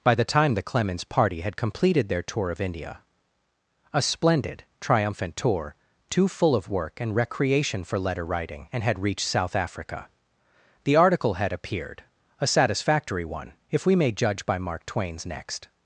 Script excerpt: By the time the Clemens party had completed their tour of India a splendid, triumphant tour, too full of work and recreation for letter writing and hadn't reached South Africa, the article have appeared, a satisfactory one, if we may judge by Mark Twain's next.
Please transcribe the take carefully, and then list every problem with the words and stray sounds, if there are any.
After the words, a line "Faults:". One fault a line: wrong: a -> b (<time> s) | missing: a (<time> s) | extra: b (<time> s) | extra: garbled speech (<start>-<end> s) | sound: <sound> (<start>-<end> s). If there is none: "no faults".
By the time the Clemens party had completed their tour of India a splendid, triumphant tour, too full of work and recreation for letter writing and had reached South Africa, the article had appeared, a satisfactory one, if we may judge by Mark Twain's next.
Faults:
wrong: hadn't -> had (8.8 s)
wrong: have -> had (11.3 s)